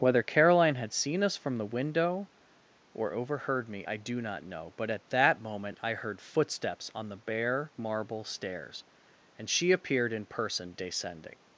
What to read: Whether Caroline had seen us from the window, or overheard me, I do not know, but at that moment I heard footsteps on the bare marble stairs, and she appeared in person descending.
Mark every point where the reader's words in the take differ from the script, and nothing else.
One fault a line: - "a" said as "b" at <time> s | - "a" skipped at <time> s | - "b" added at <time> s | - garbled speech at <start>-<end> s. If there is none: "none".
none